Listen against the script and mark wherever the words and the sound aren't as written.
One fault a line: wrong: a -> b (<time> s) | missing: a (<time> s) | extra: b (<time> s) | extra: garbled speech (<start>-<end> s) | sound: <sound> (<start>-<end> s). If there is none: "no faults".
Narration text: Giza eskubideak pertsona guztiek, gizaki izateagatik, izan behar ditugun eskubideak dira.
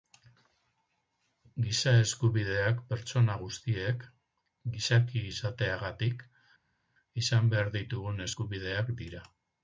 no faults